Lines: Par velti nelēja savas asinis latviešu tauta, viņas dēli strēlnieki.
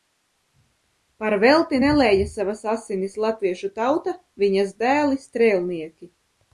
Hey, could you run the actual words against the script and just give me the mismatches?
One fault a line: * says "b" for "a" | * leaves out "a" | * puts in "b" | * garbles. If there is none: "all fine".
all fine